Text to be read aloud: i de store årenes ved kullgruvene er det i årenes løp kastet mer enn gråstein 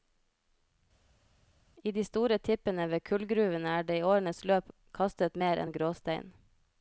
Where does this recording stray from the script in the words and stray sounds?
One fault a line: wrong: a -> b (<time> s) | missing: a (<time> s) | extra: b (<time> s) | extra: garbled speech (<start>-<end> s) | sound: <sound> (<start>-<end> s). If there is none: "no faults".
wrong: årenes -> tippene (2.5 s)